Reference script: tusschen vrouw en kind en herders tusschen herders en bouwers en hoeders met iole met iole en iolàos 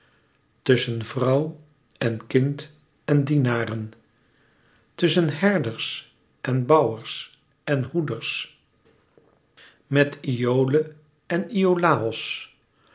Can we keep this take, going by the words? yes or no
no